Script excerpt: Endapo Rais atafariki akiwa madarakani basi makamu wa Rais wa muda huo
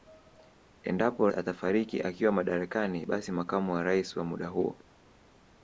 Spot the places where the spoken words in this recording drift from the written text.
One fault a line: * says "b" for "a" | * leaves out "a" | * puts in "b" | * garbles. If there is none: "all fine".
* leaves out "Rais"